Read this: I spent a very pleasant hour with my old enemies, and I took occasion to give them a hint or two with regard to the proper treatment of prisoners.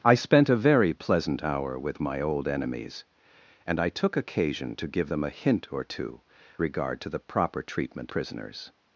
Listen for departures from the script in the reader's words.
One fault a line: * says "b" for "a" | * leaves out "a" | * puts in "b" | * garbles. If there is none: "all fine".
* leaves out "with"
* leaves out "of"